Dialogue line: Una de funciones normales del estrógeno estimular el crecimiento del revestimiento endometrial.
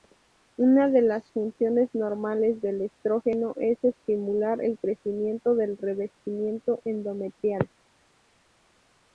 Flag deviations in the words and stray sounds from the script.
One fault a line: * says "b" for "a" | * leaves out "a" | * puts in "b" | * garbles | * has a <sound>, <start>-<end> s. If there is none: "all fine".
* puts in "las"
* puts in "es"